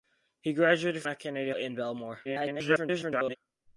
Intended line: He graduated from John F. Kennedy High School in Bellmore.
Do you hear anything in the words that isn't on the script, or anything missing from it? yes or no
yes